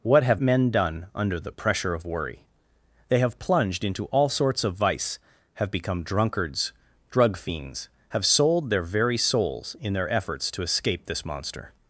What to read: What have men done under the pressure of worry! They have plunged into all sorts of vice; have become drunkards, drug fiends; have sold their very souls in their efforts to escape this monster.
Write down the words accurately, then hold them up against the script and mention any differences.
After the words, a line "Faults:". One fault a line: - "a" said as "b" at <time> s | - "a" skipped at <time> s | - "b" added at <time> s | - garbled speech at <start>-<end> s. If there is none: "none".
What have men done under the pressure of worry! They have plunged into all sorts of vice; have become drunkards, drug fiends; have sold their very souls in their efforts to escape this monster.
Faults:
none